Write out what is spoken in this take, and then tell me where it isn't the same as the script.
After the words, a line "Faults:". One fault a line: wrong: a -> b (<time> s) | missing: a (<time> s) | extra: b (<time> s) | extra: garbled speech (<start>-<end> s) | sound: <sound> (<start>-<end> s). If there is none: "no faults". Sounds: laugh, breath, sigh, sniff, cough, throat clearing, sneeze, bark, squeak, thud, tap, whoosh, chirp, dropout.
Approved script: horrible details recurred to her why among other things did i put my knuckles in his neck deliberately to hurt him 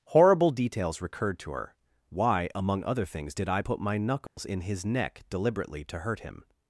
horrible details recurred to her why among other things did i put my knuckles in his neck deliberately to hurt him
Faults:
sound: dropout (4.3-4.4 s)